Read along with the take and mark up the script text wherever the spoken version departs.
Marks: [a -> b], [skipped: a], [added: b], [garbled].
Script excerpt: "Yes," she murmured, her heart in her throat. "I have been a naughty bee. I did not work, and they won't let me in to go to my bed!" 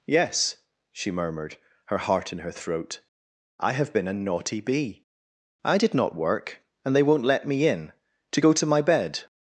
"Yes," she murmured, her heart in her throat. "I have been a naughty bee. I did not work, and they won't let me in to go to my bed!"